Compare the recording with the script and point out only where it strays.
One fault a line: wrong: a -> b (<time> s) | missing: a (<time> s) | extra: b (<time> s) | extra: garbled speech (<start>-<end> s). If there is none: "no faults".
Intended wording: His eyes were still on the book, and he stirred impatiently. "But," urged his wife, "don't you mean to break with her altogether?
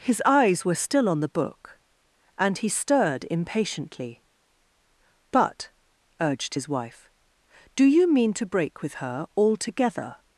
wrong: don't -> do (7.8 s)